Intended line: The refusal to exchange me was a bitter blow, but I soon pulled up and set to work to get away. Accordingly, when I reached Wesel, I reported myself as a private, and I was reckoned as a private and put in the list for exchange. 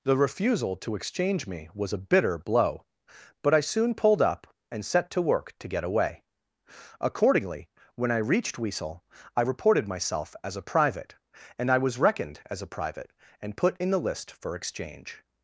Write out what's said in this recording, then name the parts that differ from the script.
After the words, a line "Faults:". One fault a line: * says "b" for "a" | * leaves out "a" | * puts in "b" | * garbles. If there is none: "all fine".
The refusal to exchange me was a bitter blow, but I soon pulled up and set to work to get away. Accordingly, when I reached Wesel, I reported myself as a private, and I was reckoned as a private and put in the list for exchange.
Faults:
all fine